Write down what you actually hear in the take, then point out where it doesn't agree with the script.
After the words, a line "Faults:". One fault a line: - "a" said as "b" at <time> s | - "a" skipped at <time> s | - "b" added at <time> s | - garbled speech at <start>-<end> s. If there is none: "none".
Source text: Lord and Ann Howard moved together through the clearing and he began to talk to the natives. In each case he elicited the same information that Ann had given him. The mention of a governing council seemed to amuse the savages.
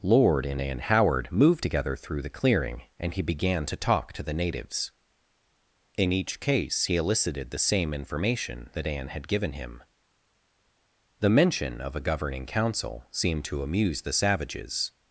Lord and Ann Howard moved together through the clearing and he began to talk to the natives. In each case he elicited the same information that Ann had given him. The mention of a governing council seemed to amuse the savages.
Faults:
none